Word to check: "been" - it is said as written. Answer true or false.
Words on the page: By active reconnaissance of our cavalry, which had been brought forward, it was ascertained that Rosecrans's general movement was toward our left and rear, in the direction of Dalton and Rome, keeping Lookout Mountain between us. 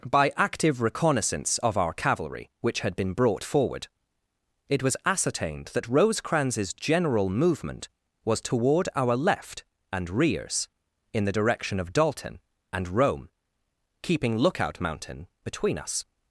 true